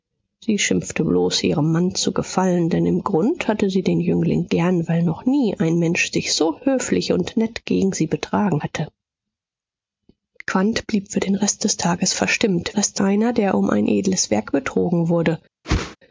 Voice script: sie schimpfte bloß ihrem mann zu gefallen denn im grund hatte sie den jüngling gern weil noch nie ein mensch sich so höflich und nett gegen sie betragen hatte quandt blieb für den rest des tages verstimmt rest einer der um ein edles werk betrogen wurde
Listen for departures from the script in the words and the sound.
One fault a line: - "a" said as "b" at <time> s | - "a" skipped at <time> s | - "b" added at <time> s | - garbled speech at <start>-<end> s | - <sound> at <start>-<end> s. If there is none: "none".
- whoosh at 15.6-16.0 s